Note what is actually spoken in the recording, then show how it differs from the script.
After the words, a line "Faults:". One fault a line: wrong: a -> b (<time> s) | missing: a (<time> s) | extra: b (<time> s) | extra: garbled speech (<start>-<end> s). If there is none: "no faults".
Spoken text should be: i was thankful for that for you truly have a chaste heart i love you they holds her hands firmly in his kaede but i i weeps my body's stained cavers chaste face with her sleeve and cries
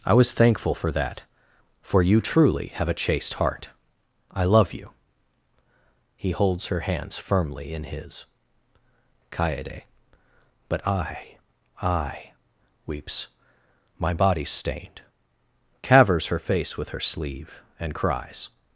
i was thankful for that for you truly have a chaste heart i love you he holds her hands firmly in his kaede but i i weeps my body's stained cavers her face with her sleeve and cries
Faults:
wrong: they -> he (6.2 s)
wrong: chaste -> her (16.3 s)